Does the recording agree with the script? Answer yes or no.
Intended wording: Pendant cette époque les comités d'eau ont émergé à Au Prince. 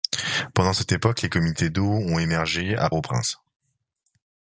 yes